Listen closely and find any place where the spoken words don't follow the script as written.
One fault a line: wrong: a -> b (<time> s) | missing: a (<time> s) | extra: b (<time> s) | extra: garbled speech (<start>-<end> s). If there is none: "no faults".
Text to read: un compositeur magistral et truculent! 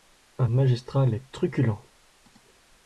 missing: compositeur (0.5 s)